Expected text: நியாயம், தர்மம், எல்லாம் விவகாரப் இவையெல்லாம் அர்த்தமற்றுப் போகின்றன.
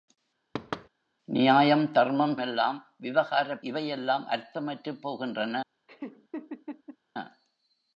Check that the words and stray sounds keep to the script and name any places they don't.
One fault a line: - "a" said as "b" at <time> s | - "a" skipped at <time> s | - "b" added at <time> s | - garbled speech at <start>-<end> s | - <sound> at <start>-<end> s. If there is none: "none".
- thud at 0.5-0.9 s
- laugh at 5.9-7.0 s